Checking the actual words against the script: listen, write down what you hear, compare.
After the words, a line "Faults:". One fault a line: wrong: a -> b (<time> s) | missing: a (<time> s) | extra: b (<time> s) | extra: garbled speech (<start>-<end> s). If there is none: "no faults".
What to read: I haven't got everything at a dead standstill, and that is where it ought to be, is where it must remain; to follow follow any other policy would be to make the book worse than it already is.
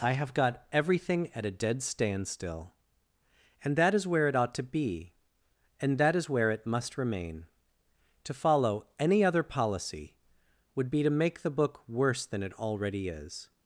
I have got everything at a dead standstill, and that is where it ought to be, and that is where it must remain; to follow any other policy would be to make the book worse than it already is.
Faults:
wrong: haven't -> have (0.1 s)
extra: and that (5.8 s)
missing: follow (8.9 s)